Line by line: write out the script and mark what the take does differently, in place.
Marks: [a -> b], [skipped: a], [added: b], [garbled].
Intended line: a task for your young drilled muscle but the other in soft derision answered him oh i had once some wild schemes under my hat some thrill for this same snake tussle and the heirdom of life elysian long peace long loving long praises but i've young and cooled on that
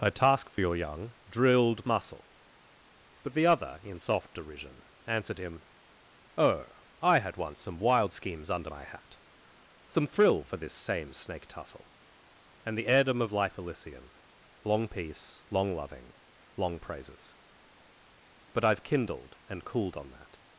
a task for your young drilled muscle but the other in soft derision answered him oh i had once some wild schemes under my hat some thrill for this same snake tussle and the heirdom of life elysian long peace long loving long praises but i've [young -> kindled] and cooled on that